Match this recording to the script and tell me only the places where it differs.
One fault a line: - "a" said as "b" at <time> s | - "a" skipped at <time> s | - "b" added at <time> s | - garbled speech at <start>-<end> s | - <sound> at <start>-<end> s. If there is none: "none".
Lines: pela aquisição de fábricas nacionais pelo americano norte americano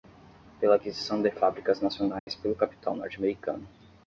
- dropout at 2.2-2.3 s
- "americano" said as "capital" at 2.6 s